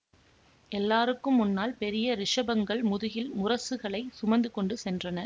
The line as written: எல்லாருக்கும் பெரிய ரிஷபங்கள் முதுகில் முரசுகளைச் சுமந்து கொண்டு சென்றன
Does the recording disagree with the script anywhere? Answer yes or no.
yes